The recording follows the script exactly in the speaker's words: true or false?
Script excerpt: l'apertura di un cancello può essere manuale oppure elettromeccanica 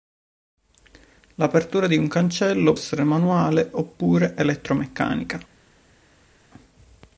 false